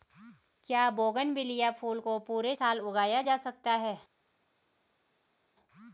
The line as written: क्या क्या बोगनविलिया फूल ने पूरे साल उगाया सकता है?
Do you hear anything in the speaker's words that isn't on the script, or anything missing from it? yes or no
yes